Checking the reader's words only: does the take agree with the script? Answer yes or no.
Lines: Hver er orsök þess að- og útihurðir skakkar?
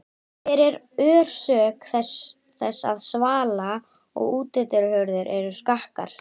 no